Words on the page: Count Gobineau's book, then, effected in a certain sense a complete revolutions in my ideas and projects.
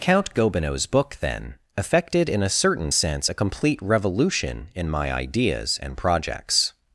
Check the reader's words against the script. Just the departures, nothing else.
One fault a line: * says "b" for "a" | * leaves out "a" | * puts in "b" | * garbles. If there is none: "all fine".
* says "revolution" for "revolutions"